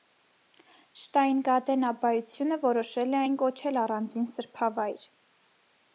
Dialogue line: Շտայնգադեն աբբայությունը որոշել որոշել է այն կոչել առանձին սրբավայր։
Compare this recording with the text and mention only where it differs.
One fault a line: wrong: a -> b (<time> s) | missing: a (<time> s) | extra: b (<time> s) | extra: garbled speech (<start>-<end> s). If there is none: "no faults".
missing: որոշել (3.1 s)